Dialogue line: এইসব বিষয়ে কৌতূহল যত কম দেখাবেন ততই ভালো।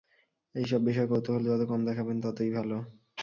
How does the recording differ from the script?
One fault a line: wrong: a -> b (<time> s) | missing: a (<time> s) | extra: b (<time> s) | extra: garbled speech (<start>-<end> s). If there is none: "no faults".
no faults